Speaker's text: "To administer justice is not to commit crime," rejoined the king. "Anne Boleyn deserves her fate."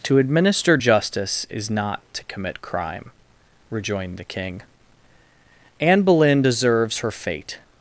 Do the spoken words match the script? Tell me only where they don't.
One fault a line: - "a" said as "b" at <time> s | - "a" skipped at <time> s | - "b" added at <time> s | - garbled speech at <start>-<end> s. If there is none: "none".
none